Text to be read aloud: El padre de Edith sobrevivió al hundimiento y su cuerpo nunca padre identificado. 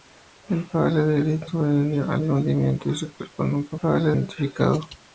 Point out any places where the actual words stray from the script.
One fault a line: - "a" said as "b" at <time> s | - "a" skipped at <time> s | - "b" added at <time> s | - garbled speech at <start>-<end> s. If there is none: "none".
none